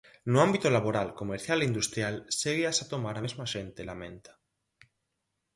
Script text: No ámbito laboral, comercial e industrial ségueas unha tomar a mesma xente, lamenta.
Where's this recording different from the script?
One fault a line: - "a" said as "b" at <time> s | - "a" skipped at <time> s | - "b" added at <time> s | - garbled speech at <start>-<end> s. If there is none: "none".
- "unha" said as "a" at 2.8 s